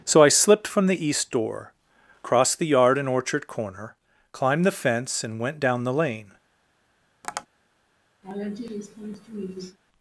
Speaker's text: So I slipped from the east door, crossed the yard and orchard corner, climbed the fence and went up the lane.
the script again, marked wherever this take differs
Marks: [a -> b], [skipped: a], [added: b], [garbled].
So I slipped from the east door, crossed the yard and orchard corner, climbed the fence and went [up -> down] the lane.